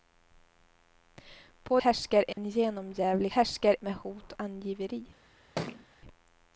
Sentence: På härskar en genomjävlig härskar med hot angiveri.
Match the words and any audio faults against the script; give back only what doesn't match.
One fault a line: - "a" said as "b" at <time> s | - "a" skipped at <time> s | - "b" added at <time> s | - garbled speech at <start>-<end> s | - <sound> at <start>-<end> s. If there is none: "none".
- dropout at 2.3-2.4 s
- thud at 5.6-5.9 s